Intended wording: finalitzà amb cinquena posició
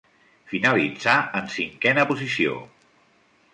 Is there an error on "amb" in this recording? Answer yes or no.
yes